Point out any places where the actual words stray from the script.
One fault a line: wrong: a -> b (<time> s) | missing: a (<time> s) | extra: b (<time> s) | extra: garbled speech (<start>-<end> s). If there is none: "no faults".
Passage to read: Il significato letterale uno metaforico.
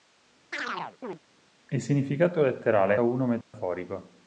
no faults